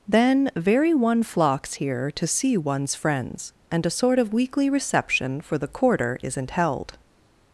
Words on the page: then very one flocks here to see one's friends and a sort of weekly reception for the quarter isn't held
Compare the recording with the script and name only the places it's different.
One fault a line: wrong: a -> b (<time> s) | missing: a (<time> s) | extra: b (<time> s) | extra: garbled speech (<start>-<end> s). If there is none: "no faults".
no faults